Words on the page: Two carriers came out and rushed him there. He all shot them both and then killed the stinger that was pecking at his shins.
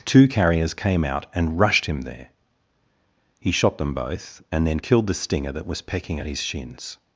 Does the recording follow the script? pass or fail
fail